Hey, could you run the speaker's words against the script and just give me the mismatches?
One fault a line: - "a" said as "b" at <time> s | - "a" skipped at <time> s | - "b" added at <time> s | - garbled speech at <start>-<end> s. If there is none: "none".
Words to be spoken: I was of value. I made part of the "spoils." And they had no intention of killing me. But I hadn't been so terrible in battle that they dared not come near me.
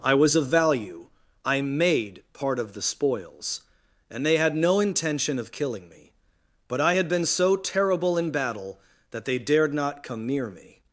- "hadn't" said as "had" at 6.9 s